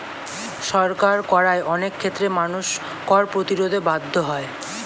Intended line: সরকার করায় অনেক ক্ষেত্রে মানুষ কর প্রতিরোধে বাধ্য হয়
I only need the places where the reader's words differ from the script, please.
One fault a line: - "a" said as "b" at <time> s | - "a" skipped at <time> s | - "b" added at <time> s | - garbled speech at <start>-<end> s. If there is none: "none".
none